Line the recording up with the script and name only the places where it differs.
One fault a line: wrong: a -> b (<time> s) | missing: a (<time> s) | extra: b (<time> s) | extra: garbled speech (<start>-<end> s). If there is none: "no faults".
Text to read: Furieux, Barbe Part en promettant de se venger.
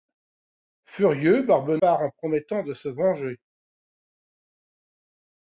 no faults